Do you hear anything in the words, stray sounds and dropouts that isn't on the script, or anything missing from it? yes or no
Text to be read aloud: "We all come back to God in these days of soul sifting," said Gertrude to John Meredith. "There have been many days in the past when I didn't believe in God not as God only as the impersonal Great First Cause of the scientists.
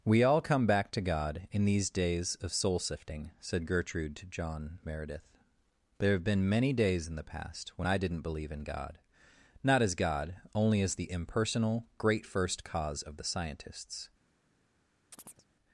yes